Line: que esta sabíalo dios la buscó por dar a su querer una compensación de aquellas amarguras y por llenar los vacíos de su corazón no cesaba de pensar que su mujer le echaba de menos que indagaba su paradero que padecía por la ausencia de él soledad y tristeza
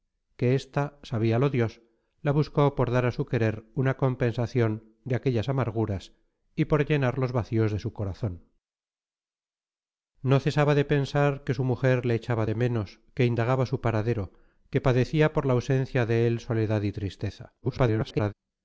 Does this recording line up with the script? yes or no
no